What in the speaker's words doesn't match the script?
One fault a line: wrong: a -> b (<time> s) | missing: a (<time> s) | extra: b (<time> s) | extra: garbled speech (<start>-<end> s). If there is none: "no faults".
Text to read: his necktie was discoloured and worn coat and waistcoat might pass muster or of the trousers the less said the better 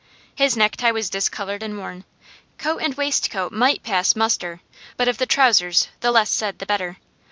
wrong: or -> but (4.9 s)